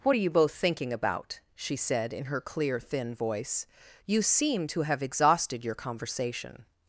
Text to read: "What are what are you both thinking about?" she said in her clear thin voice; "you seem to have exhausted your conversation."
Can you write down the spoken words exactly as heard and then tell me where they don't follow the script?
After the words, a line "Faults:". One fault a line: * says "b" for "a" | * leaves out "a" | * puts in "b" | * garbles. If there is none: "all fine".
"What are you both thinking about?" she said in her clear thin voice; "you seem to have exhausted your conversation."
Faults:
* leaves out "what are"